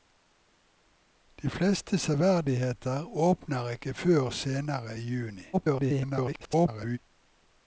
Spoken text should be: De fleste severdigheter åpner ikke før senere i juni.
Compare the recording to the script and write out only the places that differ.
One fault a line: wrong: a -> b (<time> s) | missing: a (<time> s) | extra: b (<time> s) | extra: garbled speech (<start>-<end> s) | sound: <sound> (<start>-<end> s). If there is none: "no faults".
extra: garbled speech (5.5-7.0 s)